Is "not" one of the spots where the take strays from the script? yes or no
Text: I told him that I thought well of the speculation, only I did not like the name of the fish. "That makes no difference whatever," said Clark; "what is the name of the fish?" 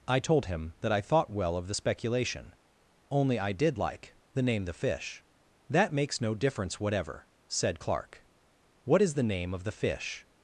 yes